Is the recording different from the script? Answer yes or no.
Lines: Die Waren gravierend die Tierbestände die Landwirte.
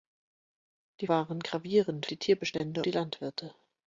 no